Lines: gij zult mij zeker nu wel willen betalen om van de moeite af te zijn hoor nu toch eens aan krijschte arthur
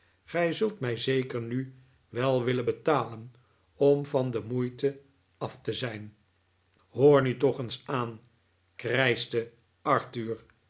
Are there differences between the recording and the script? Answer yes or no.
no